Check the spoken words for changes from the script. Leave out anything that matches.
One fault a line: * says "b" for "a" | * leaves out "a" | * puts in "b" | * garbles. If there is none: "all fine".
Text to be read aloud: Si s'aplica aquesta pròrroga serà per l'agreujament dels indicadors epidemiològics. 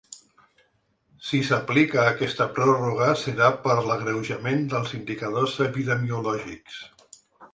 all fine